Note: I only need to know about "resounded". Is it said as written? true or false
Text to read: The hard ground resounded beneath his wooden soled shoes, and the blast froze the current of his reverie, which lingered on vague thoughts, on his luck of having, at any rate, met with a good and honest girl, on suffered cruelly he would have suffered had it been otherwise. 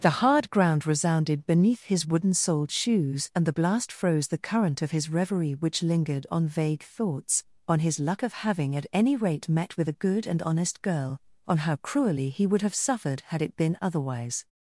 true